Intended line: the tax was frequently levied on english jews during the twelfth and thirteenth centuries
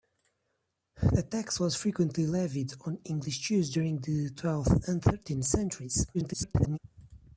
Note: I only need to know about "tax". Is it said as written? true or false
true